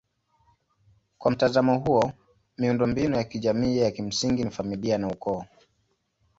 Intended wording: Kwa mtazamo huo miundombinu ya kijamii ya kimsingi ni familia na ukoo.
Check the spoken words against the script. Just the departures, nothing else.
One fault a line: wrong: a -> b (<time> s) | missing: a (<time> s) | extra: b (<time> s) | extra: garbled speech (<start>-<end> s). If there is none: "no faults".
no faults